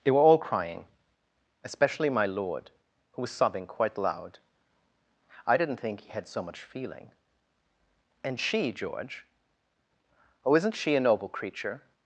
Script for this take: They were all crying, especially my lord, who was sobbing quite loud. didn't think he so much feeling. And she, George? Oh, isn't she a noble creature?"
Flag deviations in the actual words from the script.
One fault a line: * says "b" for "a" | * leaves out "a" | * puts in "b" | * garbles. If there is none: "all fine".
* puts in "I"
* puts in "had"